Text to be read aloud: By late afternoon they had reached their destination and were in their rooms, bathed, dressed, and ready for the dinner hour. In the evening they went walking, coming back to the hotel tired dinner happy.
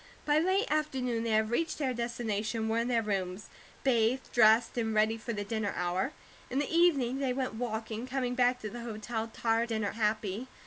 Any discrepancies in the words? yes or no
no